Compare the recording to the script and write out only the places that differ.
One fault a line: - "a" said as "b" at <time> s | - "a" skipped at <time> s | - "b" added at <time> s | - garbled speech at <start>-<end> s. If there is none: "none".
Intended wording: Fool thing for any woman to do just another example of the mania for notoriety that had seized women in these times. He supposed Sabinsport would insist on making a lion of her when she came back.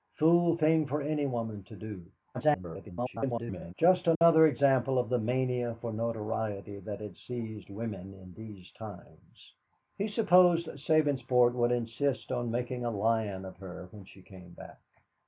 - garbled speech at 2.3-3.7 s